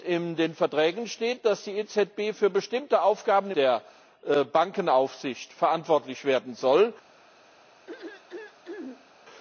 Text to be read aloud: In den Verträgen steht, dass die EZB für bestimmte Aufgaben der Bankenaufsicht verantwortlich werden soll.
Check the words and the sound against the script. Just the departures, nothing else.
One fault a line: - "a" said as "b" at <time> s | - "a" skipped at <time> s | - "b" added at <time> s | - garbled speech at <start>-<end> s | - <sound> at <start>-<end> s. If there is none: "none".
- throat clearing at 7.9-9.1 s